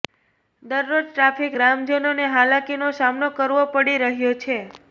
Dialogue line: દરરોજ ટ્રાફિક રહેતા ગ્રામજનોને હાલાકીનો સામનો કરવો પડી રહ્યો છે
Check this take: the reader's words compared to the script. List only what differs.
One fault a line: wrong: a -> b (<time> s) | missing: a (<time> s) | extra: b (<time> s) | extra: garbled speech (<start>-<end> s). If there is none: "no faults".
missing: રહેતા (1.6 s)